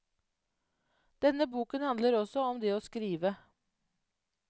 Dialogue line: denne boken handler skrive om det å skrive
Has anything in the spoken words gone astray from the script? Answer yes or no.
yes